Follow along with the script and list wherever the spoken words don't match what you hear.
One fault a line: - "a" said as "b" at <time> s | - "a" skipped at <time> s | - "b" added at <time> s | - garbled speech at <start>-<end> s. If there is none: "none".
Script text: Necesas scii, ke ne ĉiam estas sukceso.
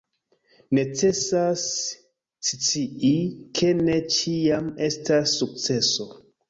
none